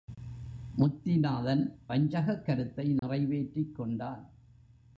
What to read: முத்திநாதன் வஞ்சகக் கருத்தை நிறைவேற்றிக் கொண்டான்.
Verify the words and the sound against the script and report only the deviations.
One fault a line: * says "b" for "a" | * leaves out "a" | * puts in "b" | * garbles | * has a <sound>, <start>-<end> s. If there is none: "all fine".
* has a dropout, 3.0-3.0 s